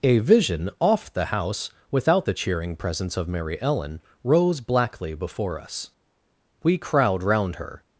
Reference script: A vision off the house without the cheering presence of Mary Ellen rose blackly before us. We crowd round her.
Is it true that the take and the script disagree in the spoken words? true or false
false